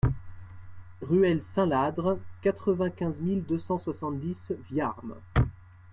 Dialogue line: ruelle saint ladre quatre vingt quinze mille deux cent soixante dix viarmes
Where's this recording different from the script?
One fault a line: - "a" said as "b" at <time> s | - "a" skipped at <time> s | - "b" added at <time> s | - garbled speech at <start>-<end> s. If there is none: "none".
none